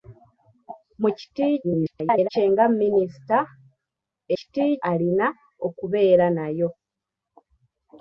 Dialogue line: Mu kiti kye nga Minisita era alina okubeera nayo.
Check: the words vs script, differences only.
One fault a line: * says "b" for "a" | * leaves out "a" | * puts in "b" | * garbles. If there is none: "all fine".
* garbles
* says "kiti" for "era"